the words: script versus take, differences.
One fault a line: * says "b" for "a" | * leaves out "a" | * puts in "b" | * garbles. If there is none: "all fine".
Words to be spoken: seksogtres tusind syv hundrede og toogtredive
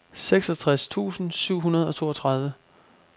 all fine